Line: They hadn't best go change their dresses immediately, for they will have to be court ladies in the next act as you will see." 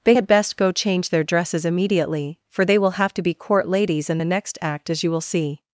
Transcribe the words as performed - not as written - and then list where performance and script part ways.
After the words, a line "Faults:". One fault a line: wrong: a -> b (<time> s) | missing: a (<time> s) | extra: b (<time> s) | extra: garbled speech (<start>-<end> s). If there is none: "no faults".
They had best go change their dresses immediately, for they will have to be court ladies in the next act as you will see."
Faults:
wrong: hadn't -> had (0.1 s)